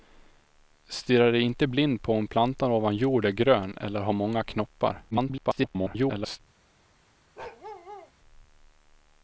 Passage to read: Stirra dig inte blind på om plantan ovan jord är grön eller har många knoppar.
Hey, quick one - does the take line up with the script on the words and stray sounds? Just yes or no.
no